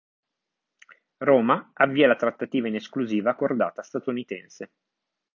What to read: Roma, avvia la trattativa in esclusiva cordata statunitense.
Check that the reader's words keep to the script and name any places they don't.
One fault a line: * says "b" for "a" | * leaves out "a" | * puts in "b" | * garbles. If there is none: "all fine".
all fine